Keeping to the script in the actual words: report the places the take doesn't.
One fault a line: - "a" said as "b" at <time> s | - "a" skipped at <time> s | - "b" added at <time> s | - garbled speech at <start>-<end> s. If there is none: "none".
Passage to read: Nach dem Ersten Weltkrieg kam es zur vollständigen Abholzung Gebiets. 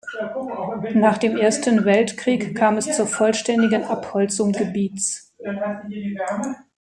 none